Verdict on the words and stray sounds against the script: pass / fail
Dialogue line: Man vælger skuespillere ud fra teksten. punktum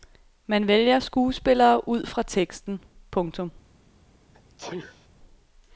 fail